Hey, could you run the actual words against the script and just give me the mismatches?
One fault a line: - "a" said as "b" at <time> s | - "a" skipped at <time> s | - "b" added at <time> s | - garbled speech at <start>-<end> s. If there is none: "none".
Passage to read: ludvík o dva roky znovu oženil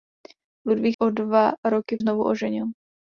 none